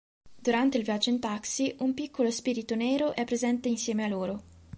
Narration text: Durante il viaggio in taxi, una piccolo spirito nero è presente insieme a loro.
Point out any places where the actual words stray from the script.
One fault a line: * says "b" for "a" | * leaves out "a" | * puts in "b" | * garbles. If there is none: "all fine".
* says "un" for "una"